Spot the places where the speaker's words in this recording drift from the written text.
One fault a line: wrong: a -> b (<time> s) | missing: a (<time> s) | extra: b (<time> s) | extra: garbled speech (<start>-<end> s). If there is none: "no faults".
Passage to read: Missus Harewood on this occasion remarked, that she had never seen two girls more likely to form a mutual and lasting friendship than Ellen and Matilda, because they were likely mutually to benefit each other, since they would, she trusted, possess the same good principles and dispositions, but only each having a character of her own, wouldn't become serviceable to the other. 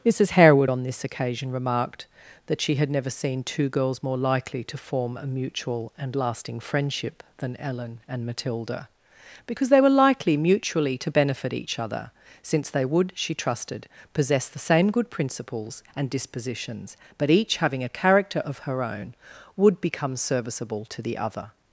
missing: only (17.3 s)
wrong: wouldn't -> would (19.6 s)